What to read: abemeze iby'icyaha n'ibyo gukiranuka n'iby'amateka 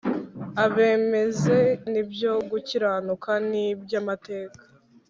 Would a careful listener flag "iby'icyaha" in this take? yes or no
yes